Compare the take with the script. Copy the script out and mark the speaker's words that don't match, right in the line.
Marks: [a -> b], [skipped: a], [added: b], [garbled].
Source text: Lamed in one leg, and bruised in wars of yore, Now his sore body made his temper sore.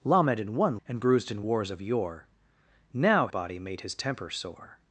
Lamed in one [skipped: leg,] and bruised in wars of yore, Now [skipped: his sore] body made his temper sore.